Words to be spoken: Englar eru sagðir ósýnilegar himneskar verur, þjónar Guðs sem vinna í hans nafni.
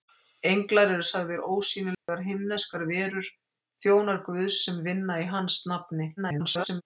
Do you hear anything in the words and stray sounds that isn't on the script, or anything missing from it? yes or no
yes